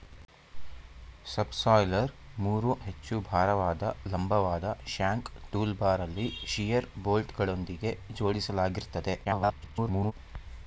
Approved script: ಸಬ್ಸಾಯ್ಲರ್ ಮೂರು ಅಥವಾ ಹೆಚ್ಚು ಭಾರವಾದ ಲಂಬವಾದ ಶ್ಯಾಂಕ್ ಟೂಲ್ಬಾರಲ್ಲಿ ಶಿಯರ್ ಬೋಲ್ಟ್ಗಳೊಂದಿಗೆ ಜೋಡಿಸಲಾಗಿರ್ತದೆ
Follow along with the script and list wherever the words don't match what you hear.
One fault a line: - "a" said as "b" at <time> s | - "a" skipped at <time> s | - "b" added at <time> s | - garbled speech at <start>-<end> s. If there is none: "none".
- "ಅಥವಾ" skipped at 2.7 s
- garbled speech at 9.2-10.1 s